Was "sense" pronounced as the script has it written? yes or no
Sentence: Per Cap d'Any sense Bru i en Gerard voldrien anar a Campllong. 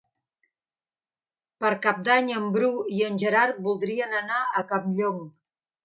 no